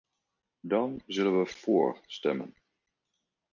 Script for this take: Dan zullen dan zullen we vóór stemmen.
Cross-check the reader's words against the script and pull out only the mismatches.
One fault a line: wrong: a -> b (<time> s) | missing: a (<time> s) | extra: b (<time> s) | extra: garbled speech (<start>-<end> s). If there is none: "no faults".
missing: dan zullen (1.4 s)